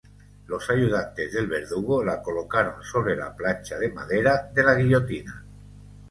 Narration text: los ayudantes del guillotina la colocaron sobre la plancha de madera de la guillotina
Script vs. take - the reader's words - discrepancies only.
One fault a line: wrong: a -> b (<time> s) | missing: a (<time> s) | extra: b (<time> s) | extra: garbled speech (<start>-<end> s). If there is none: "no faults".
wrong: guillotina -> verdugo (1.4 s)